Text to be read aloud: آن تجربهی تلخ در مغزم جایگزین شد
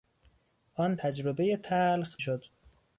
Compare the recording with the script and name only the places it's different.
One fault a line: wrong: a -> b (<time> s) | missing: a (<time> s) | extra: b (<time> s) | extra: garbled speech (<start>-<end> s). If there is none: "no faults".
missing: در مغزم جایگزین (2.2 s)